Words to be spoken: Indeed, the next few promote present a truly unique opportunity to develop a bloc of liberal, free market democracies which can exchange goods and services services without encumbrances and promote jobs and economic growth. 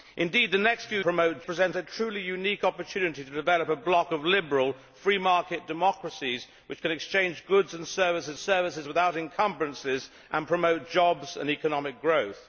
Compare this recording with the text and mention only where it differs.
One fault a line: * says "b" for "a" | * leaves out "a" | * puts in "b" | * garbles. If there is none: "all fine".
all fine